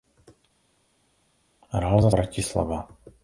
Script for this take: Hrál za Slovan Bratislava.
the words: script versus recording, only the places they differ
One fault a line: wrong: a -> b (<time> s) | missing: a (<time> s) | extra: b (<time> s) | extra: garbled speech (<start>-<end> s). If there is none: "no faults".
missing: Slovan (2.1 s)